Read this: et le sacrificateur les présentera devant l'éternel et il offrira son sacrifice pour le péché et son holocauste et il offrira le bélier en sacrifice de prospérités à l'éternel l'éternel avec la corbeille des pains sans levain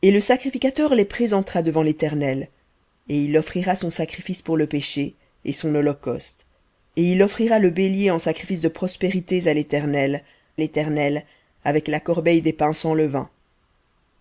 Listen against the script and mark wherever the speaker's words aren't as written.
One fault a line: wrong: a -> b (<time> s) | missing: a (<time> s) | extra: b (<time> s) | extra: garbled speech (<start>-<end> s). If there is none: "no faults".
no faults